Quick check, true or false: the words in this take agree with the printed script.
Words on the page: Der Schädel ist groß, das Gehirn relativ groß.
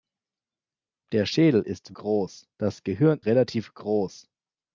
true